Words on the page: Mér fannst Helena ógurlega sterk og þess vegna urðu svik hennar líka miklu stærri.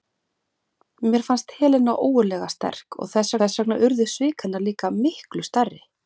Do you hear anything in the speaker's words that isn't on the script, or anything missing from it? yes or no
yes